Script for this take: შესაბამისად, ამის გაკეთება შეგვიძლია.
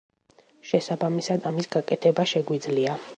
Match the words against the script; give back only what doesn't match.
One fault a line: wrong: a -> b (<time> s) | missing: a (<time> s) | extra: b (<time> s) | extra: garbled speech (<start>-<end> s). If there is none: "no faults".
no faults